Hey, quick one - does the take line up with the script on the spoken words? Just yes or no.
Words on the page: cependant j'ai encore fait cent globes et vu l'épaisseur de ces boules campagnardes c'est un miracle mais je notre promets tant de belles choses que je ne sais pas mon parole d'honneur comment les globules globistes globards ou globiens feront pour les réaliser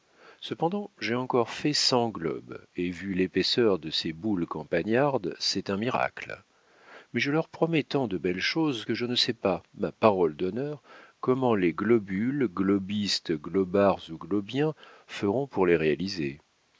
no